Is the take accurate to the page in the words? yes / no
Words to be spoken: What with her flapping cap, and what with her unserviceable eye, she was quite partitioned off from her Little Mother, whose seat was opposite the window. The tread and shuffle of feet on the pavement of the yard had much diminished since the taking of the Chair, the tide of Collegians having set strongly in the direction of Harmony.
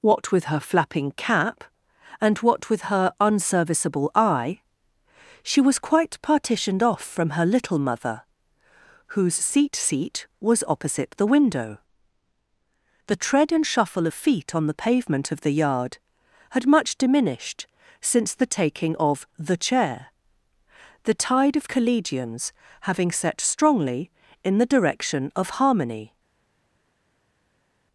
no